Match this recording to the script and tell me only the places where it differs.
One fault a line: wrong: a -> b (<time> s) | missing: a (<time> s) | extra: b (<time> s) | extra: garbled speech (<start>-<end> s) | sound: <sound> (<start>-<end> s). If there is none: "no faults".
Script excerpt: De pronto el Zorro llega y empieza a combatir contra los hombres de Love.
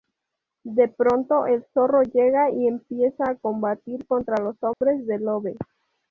sound: dropout (4.7-4.8 s)